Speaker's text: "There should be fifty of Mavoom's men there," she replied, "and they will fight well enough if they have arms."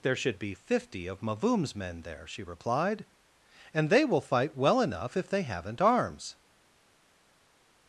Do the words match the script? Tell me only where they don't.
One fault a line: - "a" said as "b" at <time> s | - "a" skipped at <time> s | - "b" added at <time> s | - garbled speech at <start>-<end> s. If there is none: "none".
- "have" said as "haven't" at 5.4 s